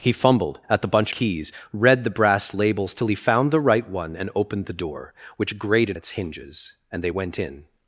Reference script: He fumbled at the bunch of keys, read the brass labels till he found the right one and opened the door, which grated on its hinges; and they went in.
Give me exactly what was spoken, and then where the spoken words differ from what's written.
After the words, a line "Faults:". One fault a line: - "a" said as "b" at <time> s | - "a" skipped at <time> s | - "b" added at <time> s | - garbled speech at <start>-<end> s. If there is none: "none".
He fumbled at the bunch keys, read the brass labels till he found the right one and opened the door, which grated its hinges; and they went in.
Faults:
- "of" skipped at 1.1 s
- "on" skipped at 6.0 s